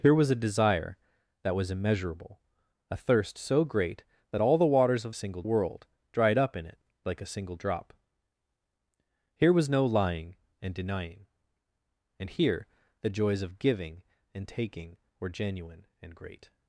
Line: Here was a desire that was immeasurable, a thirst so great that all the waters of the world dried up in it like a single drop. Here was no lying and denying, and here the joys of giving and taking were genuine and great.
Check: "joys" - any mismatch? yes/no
no